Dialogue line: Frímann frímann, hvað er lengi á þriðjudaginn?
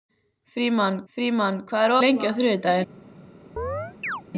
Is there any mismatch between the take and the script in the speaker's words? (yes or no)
no